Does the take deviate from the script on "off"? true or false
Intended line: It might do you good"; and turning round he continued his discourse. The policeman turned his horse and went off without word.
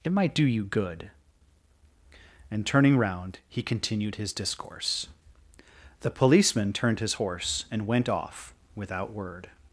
false